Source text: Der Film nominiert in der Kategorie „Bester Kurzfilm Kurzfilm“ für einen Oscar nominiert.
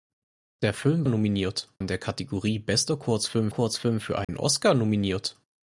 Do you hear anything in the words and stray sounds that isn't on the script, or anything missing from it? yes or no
yes